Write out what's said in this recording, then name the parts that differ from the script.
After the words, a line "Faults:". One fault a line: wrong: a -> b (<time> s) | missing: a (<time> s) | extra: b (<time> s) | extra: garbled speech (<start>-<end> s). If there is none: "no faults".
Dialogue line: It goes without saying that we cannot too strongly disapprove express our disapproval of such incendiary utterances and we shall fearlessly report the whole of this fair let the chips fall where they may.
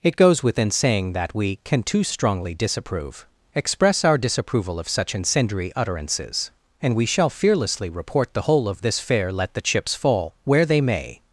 It goes within saying that we can too strongly disapprove express our disapproval of such incendiary utterances and we shall fearlessly report the whole of this fair let the chips fall where they may.
Faults:
wrong: without -> within (0.4 s)
wrong: cannot -> can (1.6 s)